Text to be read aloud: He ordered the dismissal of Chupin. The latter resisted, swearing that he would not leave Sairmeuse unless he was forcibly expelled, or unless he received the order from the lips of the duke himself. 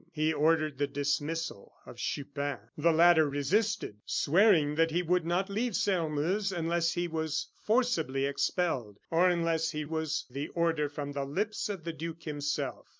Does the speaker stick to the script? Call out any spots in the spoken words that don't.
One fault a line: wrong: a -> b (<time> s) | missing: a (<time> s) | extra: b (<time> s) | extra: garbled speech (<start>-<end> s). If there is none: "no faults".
wrong: received -> was (9.8 s)